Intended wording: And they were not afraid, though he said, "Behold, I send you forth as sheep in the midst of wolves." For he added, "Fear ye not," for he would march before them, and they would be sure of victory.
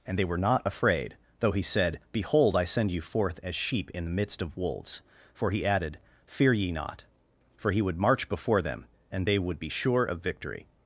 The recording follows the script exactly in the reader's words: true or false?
true